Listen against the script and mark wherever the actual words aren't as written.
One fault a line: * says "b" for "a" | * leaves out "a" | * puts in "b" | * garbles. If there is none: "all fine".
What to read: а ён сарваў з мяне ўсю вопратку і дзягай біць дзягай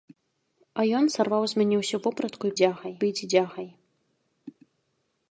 all fine